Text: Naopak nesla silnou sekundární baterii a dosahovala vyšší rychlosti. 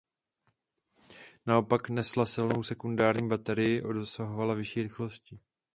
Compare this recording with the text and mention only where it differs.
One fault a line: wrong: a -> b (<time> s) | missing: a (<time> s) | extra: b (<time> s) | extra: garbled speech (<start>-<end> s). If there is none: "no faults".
no faults